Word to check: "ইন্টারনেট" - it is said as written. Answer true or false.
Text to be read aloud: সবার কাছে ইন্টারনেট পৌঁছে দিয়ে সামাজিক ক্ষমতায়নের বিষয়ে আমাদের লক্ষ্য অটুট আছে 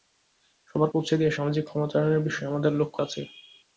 false